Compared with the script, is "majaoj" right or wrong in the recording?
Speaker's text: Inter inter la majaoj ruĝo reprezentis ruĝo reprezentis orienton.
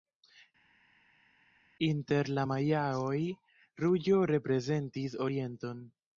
right